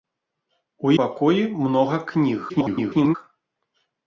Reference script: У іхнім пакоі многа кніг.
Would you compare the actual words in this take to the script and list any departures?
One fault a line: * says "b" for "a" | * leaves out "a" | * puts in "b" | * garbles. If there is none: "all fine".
* leaves out "іхнім"
* garbles